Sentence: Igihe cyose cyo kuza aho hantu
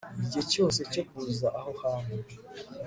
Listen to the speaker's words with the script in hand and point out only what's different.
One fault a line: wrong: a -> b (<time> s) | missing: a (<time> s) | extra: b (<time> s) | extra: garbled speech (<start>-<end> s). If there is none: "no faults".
no faults